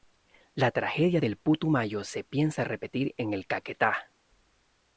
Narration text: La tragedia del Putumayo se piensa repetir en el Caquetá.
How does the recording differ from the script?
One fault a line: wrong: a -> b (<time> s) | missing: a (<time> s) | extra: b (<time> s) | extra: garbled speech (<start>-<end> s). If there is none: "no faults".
no faults